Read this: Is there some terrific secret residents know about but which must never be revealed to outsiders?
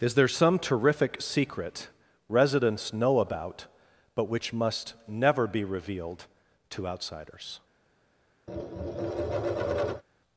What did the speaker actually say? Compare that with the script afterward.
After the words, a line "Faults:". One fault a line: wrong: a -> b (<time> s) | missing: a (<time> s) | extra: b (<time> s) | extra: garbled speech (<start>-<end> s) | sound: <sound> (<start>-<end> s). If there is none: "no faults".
Is there some terrific secret residents know about but which must never be revealed to outsiders?
Faults:
sound: tap (8.5-10.0 s)